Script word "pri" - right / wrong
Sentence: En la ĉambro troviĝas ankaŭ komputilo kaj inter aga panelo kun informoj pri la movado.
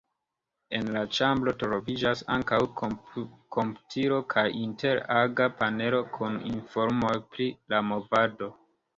right